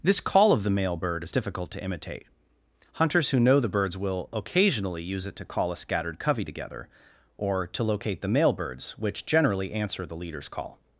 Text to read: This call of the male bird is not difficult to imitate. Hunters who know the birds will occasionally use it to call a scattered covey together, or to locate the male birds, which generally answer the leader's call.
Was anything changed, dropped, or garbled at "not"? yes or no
yes